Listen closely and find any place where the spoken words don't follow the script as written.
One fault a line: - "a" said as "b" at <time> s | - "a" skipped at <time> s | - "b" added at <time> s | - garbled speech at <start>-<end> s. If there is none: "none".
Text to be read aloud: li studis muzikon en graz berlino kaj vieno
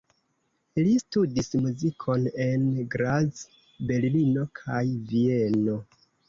none